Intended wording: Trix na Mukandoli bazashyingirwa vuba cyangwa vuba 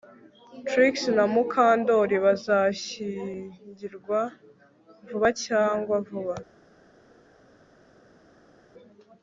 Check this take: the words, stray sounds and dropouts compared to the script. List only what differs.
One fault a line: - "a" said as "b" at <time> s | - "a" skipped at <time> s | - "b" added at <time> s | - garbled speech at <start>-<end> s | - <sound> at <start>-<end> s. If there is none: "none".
none